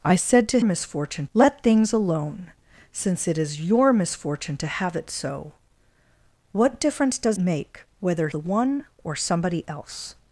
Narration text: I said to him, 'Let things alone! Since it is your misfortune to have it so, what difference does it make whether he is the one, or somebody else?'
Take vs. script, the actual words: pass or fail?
fail